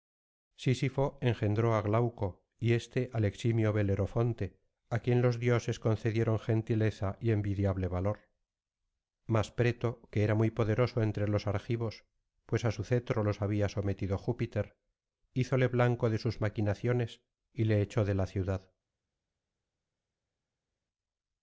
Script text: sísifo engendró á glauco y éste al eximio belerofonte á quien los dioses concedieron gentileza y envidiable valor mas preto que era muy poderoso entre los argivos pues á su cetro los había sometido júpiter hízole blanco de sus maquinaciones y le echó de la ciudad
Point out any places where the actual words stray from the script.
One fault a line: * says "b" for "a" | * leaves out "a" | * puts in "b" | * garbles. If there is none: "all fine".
all fine